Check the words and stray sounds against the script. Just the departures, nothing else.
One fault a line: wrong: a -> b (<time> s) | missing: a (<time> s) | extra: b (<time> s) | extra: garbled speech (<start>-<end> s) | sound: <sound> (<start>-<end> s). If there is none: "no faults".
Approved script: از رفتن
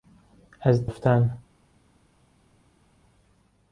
no faults